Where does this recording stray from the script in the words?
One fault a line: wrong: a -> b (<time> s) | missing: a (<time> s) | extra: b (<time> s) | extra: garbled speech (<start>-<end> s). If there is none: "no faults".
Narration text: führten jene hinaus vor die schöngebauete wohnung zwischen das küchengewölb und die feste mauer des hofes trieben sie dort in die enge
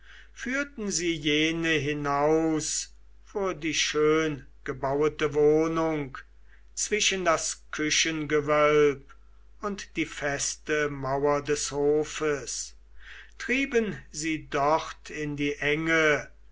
extra: sie (0.9 s)